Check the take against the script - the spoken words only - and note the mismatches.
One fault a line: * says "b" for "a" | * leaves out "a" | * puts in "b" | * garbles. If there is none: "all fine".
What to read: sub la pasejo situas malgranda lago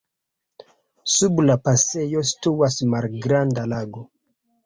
all fine